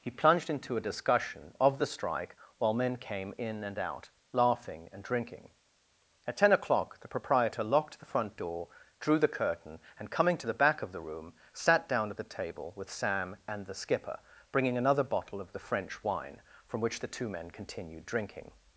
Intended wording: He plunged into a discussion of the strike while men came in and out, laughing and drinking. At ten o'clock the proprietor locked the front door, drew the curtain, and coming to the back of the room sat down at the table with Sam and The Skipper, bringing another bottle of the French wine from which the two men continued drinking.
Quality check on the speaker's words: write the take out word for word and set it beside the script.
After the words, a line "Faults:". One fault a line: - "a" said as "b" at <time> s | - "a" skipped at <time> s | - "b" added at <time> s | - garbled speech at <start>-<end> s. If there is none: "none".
He plunged into a discussion of the strike while men came in and out, laughing and drinking. At ten o'clock the proprietor locked the front door, drew the curtain, and coming to the back of the room sat down at the table with Sam and The Skipper, bringing another bottle of the French wine from which the two men continued drinking.
Faults:
none